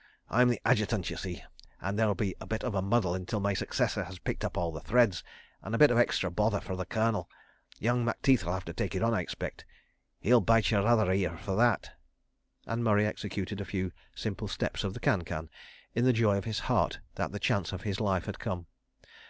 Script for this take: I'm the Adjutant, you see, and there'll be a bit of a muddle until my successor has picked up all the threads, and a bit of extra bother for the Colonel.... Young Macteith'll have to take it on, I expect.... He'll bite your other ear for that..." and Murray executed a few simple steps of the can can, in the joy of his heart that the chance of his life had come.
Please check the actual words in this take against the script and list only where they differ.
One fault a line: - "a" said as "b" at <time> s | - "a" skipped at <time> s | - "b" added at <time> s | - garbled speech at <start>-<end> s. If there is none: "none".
none